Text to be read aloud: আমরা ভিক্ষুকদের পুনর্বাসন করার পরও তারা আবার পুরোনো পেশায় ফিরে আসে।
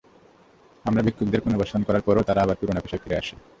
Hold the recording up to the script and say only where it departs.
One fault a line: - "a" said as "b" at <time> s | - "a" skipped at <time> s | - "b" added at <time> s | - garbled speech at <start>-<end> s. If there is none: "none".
none